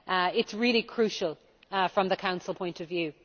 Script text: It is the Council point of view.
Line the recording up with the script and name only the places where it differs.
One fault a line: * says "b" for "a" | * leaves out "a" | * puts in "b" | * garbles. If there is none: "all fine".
* puts in "really crucial from"